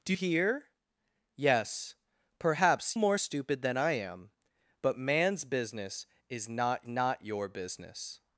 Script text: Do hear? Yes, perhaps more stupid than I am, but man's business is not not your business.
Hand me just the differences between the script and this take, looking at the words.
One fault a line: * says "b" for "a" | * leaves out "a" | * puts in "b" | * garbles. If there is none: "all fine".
all fine